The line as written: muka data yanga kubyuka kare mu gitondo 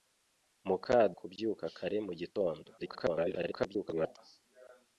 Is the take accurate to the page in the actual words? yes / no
no